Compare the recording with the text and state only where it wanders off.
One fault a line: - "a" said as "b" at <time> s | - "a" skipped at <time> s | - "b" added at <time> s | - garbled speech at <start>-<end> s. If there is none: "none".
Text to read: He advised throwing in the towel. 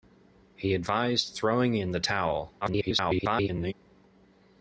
- garbled speech at 2.6-3.7 s